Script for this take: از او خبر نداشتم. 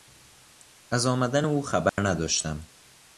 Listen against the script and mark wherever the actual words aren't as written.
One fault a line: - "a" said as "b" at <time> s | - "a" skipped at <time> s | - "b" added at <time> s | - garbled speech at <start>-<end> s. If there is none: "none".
- "آمدن" added at 1.1 s